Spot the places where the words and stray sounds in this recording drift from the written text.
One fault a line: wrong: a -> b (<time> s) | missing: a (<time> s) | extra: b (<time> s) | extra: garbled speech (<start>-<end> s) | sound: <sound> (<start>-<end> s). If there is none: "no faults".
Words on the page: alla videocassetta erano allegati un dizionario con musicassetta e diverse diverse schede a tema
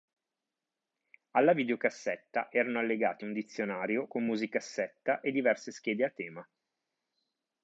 missing: diverse (5.7 s)